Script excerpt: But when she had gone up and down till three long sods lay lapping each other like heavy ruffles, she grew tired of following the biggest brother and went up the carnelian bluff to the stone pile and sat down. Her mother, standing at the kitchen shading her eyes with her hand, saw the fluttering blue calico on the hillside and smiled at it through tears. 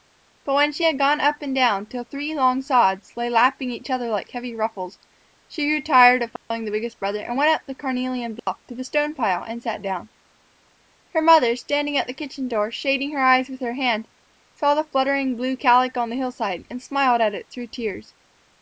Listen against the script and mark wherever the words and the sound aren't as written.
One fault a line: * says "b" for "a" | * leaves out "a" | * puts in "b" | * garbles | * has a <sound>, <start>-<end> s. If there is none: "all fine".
* has a dropout, 6.4-6.5 s
* has a dropout, 8.4-8.5 s
* puts in "door"